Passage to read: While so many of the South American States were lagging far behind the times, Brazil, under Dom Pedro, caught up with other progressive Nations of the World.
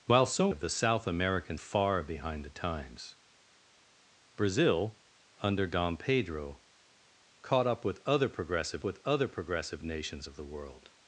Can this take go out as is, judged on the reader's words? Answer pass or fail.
fail